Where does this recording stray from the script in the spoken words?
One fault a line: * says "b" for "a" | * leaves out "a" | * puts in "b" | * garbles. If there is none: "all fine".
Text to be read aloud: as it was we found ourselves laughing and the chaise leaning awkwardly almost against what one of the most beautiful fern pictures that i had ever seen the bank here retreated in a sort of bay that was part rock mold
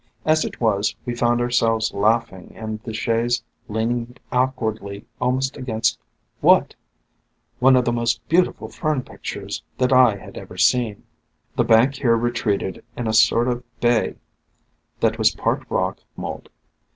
all fine